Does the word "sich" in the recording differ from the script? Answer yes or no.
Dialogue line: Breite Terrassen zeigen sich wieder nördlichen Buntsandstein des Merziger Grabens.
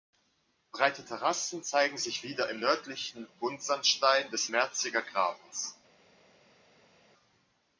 no